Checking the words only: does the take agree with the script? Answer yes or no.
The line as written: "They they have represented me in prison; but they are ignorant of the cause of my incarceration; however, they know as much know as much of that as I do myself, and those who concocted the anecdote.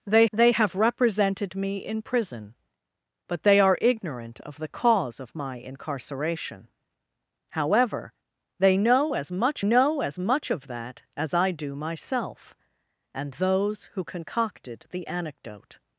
yes